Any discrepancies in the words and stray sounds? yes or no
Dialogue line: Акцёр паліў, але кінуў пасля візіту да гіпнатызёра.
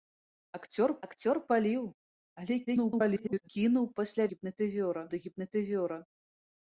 yes